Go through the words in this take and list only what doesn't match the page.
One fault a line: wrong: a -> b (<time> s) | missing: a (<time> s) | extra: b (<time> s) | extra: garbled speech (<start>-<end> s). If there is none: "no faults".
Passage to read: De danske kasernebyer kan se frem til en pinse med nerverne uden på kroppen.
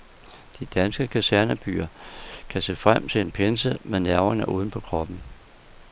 no faults